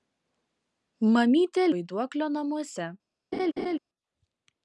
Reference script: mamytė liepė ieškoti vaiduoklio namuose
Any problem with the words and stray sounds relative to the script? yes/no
yes